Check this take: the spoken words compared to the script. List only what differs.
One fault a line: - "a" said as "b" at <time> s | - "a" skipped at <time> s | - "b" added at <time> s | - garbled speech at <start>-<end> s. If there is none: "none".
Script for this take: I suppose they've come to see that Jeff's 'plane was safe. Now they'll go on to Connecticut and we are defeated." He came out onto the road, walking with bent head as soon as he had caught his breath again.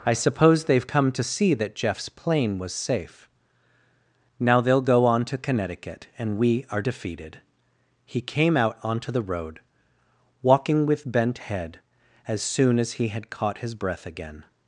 none